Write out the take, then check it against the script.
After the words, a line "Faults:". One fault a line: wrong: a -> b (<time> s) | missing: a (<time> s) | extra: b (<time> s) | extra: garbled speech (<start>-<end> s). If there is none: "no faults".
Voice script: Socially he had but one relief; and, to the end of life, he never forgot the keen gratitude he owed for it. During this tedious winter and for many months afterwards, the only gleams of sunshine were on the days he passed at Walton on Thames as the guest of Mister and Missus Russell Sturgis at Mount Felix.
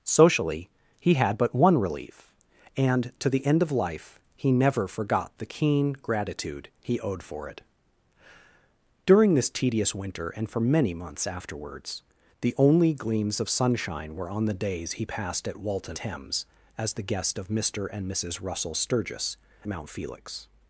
Socially he had but one relief; and, to the end of life, he never forgot the keen gratitude he owed for it. During this tedious winter and for many months afterwards, the only gleams of sunshine were on the days he passed at Walton Thames as the guest of Mister and Missus Russell Sturgis Mount Felix.
Faults:
missing: on (16.0 s)
missing: at (19.4 s)